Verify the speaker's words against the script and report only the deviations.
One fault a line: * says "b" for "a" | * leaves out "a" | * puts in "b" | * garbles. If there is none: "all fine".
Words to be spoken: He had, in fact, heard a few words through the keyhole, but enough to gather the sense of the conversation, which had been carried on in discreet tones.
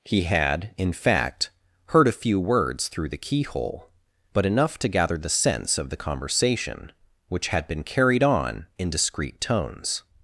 all fine